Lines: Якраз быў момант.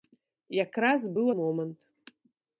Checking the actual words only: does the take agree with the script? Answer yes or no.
yes